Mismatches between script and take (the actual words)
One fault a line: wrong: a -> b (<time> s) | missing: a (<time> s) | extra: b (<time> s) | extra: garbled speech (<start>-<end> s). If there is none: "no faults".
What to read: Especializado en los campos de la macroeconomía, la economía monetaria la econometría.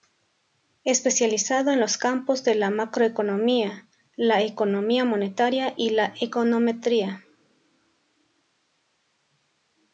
extra: y (5.7 s)